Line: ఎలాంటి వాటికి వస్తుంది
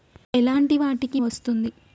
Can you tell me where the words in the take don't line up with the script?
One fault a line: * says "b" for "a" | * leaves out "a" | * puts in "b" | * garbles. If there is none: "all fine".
all fine